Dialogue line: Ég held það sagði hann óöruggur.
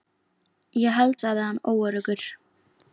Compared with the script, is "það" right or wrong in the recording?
wrong